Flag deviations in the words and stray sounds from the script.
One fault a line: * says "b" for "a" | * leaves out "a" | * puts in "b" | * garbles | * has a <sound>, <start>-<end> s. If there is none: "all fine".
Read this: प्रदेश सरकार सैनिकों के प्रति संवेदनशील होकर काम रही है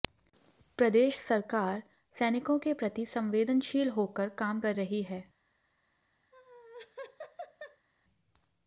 * puts in "कर"
* has a laugh, 6.3-7.9 s